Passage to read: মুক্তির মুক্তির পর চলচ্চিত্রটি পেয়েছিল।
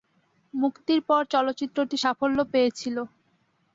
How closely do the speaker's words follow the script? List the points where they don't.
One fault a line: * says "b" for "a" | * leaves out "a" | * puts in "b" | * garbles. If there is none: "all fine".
* leaves out "মুক্তির"
* puts in "সাফল্য"